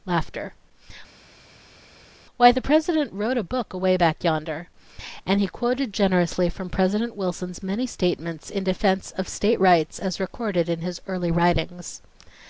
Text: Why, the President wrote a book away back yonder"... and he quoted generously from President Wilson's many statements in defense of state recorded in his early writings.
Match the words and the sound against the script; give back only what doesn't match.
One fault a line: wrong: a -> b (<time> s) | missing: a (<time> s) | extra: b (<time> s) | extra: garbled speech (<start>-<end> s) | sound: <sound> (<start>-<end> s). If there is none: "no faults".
extra: rights as (9.6 s)